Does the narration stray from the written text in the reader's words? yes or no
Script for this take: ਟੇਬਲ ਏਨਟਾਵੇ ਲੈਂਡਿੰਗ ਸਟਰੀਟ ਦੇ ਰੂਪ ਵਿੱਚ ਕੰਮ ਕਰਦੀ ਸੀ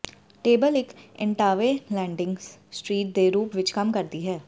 yes